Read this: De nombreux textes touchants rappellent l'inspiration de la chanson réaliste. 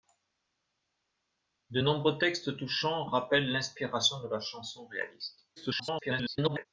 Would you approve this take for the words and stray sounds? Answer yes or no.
no